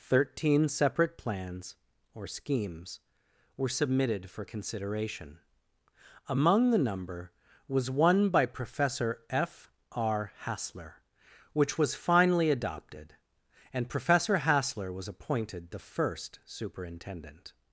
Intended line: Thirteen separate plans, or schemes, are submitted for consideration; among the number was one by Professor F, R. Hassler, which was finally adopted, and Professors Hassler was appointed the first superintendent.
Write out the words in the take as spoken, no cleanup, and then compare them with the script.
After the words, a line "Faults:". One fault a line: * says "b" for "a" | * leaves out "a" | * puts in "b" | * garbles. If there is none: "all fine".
Thirteen separate plans, or schemes, were submitted for consideration; among the number was one by Professor F, R. Hassler, which was finally adopted, and Professor Hassler was appointed the first superintendent.
Faults:
* says "were" for "are"
* says "Professor" for "Professors"